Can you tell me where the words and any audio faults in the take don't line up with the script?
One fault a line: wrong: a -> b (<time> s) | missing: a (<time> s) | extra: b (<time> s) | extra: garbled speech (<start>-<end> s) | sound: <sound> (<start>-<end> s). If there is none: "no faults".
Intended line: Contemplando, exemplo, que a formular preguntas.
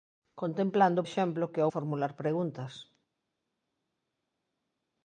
no faults